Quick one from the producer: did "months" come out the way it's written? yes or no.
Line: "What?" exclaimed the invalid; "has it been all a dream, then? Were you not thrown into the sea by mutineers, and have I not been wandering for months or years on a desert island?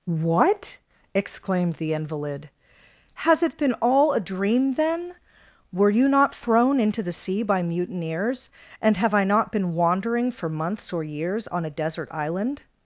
yes